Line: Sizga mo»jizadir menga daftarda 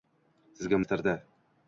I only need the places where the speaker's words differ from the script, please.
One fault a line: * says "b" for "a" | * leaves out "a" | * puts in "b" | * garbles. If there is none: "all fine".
* leaves out "mo»jizadir menga"